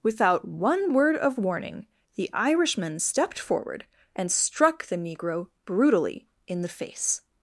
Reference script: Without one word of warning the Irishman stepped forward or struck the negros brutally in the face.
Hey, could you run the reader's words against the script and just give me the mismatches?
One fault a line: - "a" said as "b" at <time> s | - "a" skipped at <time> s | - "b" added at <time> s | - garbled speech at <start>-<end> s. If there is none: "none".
- "or" said as "and" at 4.1 s
- "negros" said as "negro" at 5.0 s